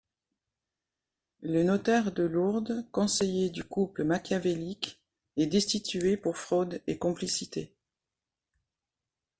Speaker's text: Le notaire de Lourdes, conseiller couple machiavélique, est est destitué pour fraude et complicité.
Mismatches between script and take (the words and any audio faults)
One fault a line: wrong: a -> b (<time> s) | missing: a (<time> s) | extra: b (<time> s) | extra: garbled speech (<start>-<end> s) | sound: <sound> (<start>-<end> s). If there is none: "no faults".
extra: du (3.5 s)
missing: est (5.5 s)